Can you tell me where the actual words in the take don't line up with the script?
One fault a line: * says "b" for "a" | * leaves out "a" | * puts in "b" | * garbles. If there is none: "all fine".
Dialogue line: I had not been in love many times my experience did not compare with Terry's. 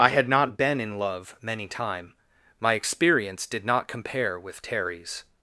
* says "time" for "times"